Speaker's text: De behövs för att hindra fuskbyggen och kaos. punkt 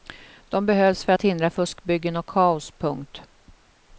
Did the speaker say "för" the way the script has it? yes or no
yes